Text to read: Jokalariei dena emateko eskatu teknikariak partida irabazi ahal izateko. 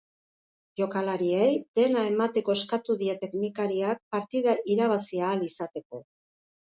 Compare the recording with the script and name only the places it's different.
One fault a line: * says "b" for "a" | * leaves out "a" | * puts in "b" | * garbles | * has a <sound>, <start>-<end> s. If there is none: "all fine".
* puts in "die"